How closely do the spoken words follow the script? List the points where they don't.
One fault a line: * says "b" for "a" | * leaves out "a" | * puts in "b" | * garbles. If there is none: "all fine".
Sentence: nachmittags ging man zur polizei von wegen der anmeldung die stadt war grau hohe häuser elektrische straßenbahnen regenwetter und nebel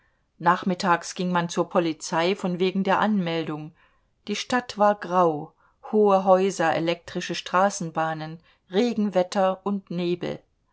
all fine